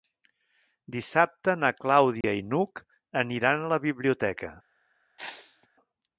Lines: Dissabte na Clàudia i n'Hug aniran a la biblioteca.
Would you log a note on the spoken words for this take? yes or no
no